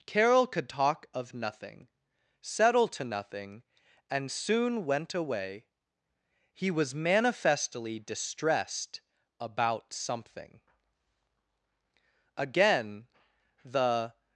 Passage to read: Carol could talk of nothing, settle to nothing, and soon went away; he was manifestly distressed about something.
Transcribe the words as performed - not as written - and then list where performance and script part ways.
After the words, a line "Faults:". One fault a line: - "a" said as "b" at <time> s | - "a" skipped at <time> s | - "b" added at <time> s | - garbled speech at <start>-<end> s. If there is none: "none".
Carol could talk of nothing, settle to nothing, and soon went away; he was manifestly distressed about something. Again, the
Faults:
- "Again the" added at 12.3 s